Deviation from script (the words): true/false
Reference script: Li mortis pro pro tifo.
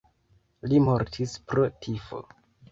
true